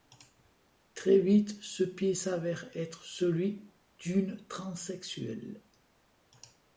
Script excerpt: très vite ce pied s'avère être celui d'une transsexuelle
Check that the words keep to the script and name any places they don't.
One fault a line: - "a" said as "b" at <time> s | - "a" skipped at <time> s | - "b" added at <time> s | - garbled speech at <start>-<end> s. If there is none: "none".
none